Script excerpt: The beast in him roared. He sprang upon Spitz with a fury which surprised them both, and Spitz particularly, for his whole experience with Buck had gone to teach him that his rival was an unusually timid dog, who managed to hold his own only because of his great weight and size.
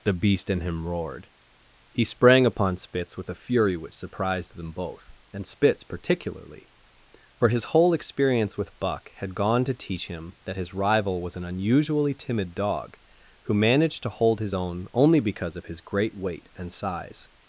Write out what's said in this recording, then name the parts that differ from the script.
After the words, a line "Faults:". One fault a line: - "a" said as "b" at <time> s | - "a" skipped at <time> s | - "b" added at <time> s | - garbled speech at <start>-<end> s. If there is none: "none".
The beast in him roared. He sprang upon Spitz with a fury which surprised them both, and Spitz particularly, for his whole experience with Buck had gone to teach him that his rival was an unusually timid dog, who managed to hold his own only because of his great weight and size.
Faults:
none